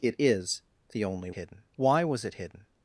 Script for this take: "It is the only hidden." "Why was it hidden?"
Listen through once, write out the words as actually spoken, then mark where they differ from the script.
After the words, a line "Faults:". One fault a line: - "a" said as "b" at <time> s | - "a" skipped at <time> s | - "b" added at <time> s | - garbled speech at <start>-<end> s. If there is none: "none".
"It is the only hidden." "Why was it hidden?"
Faults:
none